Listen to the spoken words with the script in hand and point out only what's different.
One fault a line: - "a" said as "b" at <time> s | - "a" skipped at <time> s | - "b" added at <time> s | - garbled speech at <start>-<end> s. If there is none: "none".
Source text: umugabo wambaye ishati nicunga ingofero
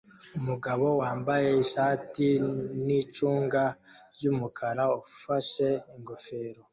- "ryumukara ufashe" added at 4.1 s